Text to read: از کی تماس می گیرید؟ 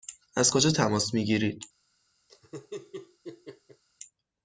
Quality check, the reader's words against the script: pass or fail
fail